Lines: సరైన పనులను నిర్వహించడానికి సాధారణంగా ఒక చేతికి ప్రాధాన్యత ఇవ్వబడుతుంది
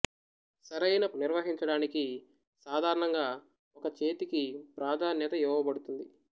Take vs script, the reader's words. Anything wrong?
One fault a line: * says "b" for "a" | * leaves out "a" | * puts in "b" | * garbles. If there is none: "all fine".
* leaves out "పనులను"